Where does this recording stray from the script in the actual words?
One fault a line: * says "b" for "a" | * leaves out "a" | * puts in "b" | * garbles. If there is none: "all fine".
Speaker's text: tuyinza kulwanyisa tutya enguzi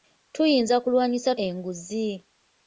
* leaves out "tutya"